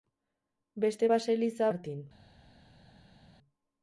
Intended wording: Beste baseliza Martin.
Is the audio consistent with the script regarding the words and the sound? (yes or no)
yes